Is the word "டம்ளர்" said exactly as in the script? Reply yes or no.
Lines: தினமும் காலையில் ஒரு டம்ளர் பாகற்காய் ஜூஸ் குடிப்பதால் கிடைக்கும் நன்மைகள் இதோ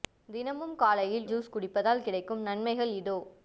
no